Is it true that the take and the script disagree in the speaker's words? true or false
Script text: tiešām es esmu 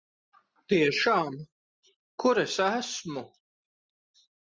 true